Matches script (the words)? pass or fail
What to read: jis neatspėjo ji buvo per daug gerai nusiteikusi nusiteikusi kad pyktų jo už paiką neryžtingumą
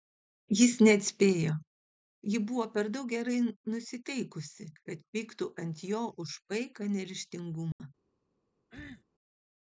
fail